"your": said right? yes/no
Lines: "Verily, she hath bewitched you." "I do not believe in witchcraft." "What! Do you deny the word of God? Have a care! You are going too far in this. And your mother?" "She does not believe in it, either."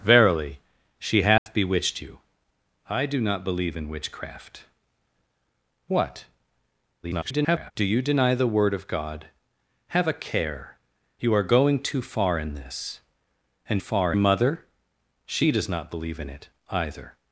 no